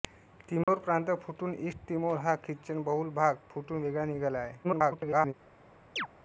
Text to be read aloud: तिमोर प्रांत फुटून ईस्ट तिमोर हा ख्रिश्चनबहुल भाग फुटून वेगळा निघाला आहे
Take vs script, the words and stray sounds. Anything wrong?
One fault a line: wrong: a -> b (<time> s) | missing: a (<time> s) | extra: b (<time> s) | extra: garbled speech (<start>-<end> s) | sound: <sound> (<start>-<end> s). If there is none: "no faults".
sound: dropout (0.6-0.7 s)
extra: garbled speech (4.6-5.3 s)
sound: chirp (6.0-6.1 s)